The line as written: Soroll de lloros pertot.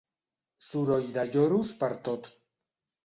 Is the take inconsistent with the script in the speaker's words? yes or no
no